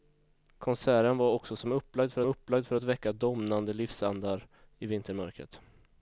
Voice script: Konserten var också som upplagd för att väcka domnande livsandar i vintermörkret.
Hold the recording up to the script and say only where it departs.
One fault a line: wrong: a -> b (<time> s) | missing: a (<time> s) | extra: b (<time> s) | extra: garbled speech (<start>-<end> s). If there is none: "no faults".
extra: upplagd för (2.2 s)